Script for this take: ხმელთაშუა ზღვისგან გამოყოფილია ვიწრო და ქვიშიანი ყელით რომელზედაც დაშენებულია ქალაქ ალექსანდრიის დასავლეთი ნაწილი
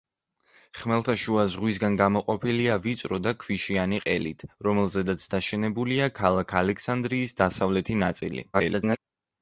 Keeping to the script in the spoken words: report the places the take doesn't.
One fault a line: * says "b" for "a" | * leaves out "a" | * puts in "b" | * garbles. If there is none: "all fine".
* garbles